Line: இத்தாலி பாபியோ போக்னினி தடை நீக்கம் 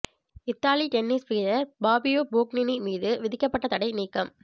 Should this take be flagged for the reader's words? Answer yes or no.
yes